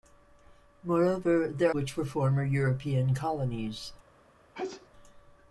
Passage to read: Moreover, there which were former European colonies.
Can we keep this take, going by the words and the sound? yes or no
no